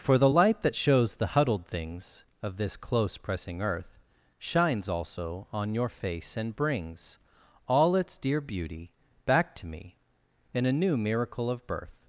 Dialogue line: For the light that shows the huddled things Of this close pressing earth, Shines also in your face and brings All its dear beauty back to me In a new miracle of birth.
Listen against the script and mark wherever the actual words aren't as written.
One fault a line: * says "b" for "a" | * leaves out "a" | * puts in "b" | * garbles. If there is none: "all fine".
* says "on" for "in"